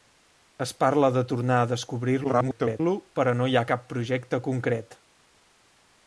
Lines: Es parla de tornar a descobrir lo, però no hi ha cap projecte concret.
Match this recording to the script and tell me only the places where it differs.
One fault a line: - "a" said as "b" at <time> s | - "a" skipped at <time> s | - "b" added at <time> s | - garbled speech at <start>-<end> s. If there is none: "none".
- garbled speech at 2.2-2.8 s